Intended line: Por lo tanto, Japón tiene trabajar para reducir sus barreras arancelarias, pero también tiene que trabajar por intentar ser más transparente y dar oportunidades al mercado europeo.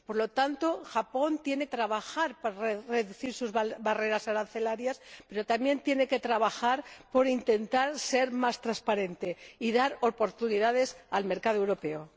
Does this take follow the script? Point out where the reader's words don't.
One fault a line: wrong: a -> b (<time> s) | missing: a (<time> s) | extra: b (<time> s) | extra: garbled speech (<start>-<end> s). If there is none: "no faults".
no faults